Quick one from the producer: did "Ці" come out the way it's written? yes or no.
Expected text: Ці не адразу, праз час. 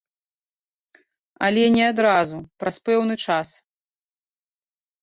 no